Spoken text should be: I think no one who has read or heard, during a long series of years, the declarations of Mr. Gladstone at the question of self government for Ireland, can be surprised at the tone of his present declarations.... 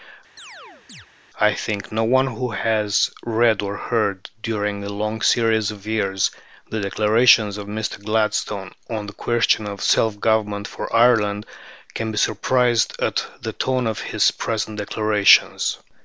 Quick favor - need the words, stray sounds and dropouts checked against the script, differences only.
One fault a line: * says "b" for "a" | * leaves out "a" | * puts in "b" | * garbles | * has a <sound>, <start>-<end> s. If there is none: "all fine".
* has a chirp, 0.4-1.1 s
* says "on" for "at"